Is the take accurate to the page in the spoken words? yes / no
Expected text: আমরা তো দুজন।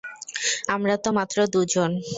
no